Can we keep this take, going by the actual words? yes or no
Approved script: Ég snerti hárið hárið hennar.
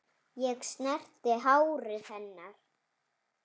no